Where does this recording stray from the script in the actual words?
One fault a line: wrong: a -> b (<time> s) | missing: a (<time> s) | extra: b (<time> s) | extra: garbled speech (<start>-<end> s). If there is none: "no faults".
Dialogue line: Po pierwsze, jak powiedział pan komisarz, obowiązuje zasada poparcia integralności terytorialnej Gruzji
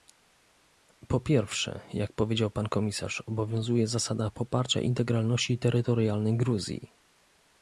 no faults